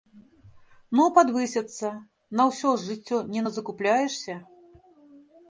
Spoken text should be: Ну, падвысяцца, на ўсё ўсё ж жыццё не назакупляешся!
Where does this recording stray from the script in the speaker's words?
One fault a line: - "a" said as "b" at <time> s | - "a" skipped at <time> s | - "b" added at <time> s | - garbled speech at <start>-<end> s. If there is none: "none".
- "ўсё" skipped at 2.7 s